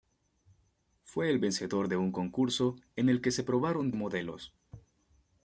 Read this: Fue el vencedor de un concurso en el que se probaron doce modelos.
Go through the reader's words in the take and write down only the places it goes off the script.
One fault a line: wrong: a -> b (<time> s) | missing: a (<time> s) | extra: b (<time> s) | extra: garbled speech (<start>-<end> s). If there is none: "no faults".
missing: doce (3.9 s)